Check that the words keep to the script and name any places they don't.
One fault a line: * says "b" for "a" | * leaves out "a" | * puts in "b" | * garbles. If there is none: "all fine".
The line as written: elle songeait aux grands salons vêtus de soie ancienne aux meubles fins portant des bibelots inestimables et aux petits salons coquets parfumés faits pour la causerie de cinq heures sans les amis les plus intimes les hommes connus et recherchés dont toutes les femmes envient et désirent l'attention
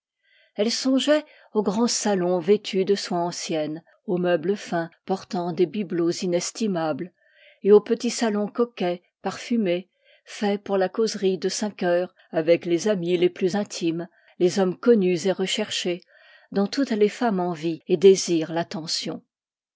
* says "avec" for "sans"